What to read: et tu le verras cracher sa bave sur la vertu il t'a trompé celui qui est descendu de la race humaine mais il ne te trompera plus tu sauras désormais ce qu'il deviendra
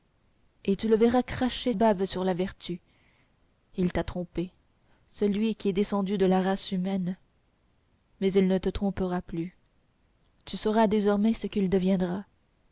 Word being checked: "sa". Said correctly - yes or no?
no